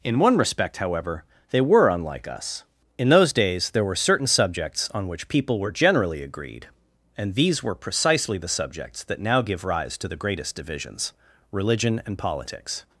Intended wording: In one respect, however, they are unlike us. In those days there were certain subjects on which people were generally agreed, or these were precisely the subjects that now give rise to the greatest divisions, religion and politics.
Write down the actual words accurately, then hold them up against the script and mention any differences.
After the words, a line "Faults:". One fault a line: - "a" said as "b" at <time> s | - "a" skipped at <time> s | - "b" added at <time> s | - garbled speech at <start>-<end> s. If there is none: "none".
In one respect, however, they were unlike us. In those days there were certain subjects on which people were generally agreed, and these were precisely the subjects that now give rise to the greatest divisions, religion and politics.
Faults:
- "are" said as "were" at 1.6 s
- "or" said as "and" at 7.2 s